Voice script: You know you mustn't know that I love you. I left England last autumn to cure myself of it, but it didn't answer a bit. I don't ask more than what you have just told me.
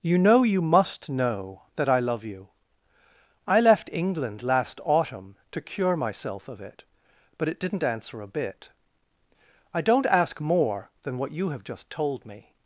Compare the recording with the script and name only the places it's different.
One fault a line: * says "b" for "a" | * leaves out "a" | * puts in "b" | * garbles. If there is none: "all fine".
* says "must" for "mustn't"